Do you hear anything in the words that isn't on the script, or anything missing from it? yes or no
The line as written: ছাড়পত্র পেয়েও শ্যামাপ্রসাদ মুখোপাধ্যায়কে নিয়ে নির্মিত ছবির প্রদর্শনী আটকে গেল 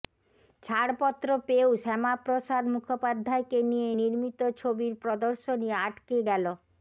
no